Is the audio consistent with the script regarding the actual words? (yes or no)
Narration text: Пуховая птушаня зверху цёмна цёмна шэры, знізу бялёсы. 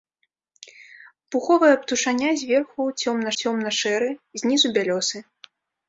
yes